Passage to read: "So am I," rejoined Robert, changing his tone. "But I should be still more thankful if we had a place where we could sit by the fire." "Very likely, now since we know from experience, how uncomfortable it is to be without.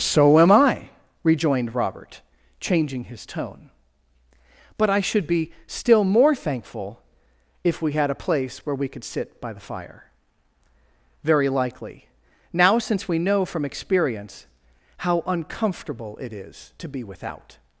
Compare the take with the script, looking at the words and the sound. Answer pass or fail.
pass